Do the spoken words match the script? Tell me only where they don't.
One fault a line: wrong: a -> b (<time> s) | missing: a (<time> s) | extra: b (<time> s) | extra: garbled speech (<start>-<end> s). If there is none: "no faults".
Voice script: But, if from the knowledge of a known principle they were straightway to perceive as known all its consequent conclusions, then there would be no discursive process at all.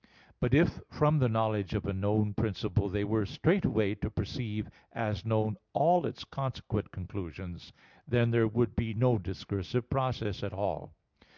no faults